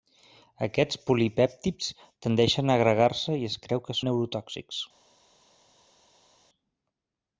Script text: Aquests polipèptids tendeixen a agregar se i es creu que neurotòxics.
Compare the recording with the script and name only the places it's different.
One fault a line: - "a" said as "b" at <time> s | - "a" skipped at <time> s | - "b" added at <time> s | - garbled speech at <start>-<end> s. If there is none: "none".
none